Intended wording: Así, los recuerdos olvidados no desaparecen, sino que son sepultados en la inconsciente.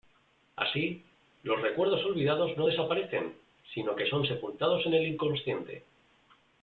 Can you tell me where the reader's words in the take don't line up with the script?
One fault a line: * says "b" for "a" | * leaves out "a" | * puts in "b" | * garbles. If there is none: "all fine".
* says "el" for "la"